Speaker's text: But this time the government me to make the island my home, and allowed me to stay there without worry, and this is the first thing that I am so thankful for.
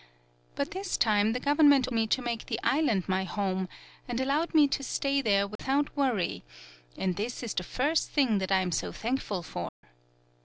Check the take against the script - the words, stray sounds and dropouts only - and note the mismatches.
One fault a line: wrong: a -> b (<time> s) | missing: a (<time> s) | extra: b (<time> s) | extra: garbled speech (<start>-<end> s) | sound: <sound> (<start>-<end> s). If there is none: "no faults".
sound: dropout (5.6-5.6 s)
sound: dropout (9.7-9.8 s)